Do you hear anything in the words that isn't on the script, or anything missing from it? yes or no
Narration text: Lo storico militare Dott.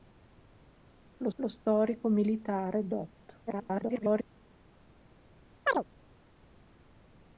yes